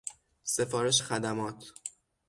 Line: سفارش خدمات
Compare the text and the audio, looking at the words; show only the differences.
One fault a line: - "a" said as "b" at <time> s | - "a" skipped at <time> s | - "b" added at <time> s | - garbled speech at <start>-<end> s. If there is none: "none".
none